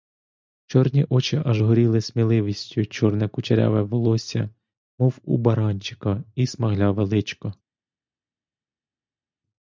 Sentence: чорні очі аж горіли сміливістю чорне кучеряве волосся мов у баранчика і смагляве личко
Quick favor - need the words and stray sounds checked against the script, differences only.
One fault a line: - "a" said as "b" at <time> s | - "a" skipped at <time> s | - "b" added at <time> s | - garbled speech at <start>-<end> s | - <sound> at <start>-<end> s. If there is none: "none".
none